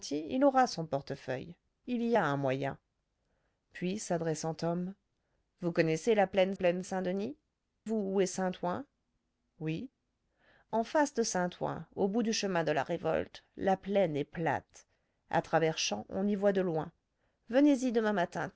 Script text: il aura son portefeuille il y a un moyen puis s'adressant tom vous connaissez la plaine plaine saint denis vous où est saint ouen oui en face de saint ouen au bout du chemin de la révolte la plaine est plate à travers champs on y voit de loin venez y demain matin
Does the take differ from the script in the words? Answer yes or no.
no